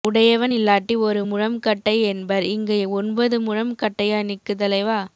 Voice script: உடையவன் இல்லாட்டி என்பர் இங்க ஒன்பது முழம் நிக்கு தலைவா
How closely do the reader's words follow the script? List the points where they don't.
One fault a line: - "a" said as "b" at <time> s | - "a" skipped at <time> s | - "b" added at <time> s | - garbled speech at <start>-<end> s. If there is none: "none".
- "ஒரு முழம் கட்டை" added at 1.0 s
- "கட்டையா" added at 3.7 s